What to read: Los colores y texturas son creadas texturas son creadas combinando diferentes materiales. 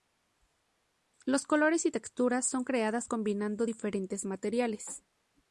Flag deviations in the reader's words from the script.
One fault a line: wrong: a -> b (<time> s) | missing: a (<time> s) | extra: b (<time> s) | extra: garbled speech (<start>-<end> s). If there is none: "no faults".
missing: texturas son creadas (3.1 s)